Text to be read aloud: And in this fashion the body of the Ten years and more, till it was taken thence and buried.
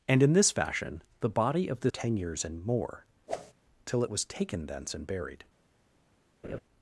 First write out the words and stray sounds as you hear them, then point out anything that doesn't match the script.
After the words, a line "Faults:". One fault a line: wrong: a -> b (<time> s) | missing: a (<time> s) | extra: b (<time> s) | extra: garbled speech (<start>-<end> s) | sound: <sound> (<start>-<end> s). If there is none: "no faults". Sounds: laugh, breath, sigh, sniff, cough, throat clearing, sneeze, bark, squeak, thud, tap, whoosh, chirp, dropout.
And in this fashion the body of the Ten years and more, till it was taken thence and buried.
Faults:
sound: whoosh (3.3-3.5 s)
sound: laugh (6.4-6.6 s)